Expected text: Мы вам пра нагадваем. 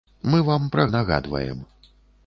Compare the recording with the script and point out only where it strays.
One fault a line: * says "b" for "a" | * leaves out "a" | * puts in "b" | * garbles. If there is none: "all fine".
all fine